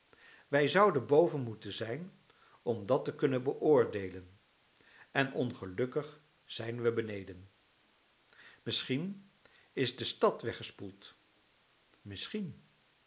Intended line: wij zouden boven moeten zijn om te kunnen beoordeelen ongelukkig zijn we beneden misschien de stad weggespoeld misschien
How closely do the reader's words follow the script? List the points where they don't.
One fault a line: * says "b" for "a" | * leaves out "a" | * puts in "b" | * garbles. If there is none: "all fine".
* puts in "dat"
* puts in "en"
* puts in "is"